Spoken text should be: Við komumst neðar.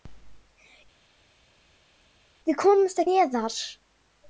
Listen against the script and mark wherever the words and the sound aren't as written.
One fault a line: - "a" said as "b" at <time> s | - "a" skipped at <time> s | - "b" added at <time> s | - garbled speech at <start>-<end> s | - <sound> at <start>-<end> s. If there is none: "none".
none